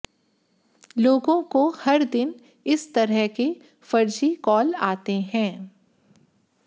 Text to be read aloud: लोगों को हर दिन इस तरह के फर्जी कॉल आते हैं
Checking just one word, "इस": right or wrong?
right